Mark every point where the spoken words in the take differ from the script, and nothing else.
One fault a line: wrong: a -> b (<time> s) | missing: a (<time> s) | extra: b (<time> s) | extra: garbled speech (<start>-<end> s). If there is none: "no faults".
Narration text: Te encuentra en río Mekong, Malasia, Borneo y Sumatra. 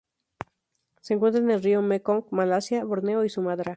wrong: Te -> Se (1.0 s)
extra: el (1.5 s)